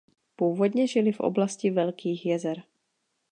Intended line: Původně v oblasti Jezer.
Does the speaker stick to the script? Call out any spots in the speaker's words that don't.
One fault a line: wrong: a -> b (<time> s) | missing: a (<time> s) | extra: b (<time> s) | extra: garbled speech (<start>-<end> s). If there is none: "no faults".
extra: žili (0.9 s)
extra: Velkých (1.7 s)